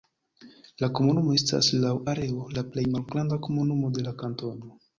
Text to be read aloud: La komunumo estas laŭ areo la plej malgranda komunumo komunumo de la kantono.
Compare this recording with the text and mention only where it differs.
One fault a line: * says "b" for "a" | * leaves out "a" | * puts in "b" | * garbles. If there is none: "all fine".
* leaves out "komunumo"